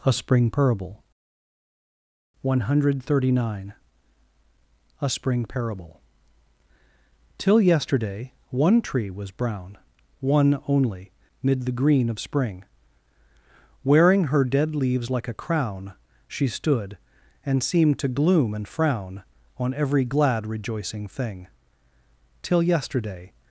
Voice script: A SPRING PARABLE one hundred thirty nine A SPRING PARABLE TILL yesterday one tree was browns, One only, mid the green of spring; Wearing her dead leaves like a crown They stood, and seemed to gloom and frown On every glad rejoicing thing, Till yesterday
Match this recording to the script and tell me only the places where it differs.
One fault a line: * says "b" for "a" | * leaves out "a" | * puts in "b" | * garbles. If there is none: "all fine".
* says "brown" for "browns"
* says "She" for "They"